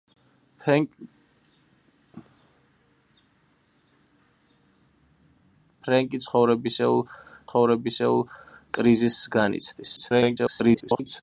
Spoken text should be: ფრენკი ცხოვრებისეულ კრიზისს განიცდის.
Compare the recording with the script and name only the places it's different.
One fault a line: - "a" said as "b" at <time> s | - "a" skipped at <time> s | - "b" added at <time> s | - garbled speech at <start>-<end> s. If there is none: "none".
- "ცხოვრებისეულ" added at 7.5 s
- garbled speech at 10.0-11.2 s